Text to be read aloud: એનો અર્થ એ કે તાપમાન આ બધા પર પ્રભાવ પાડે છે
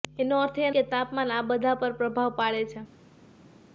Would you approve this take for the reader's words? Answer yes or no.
yes